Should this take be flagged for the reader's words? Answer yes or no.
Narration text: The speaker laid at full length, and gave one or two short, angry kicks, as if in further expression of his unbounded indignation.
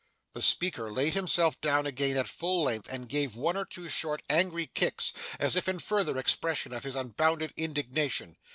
yes